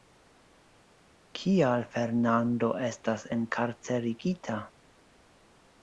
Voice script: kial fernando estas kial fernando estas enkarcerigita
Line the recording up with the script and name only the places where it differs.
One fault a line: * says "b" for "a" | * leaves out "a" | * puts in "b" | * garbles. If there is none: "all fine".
* leaves out "kial fernando estas"